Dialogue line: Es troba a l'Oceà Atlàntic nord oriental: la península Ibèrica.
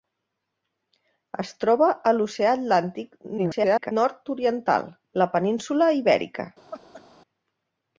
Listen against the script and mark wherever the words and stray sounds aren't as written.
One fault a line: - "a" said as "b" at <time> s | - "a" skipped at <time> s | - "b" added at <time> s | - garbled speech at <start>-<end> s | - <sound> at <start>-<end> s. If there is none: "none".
- garbled speech at 3.4-3.9 s
- laugh at 6.7-7.0 s